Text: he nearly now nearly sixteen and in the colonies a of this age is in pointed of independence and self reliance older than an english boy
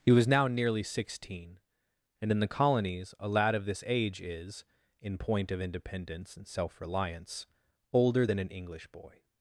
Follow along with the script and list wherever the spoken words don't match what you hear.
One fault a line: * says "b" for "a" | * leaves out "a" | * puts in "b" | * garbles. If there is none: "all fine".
* says "was" for "nearly"
* puts in "lad"
* says "point" for "pointed"